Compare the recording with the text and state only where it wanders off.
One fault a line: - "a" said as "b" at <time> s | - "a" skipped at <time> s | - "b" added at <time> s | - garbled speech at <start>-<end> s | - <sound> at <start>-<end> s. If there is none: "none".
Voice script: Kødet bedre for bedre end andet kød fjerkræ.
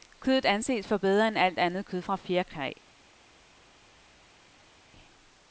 - "bedre" said as "anses" at 0.5 s
- "alt" added at 1.4 s
- "fra" added at 2.0 s